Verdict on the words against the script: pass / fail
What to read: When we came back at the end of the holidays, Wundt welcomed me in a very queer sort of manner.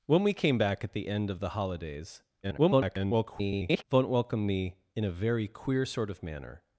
fail